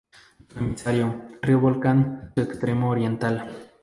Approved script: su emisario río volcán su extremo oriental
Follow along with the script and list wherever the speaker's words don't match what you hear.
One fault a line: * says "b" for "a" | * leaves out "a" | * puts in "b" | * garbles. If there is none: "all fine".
all fine